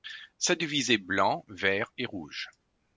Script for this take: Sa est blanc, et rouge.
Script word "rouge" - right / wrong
right